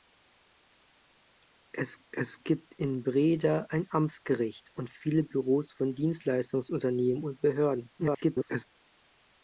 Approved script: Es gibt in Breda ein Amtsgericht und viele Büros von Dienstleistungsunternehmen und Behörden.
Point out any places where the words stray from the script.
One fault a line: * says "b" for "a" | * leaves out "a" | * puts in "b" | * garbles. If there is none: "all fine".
* puts in "es"
* garbles